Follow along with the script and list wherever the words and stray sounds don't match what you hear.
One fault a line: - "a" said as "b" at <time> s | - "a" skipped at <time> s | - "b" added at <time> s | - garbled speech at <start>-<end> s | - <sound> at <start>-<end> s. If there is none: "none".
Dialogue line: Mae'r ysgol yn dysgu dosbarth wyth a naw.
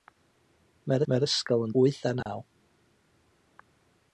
- "mae'r" added at 1.1 s
- "dysgu dosbarth" skipped at 1.7 s
- dropout at 2.2-2.3 s